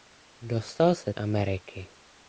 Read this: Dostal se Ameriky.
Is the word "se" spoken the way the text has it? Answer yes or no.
yes